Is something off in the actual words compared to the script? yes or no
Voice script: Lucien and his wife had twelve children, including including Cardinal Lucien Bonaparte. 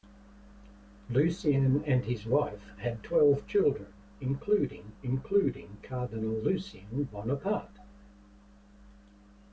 no